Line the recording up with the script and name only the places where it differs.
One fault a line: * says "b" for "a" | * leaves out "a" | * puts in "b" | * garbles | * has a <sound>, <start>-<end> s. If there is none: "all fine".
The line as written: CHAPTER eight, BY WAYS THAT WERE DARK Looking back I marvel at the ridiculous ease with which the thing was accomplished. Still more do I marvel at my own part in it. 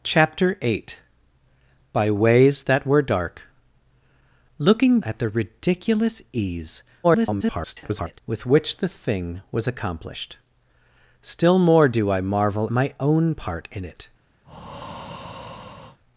* leaves out "back I marvel"
* garbles
* leaves out "at"
* has a breath, 14.4-16.0 s